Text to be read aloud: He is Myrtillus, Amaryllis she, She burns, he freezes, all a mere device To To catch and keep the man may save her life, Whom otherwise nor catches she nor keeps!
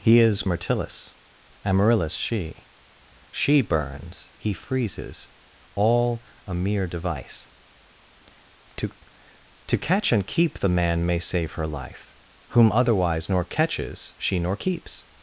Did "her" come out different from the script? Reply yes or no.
no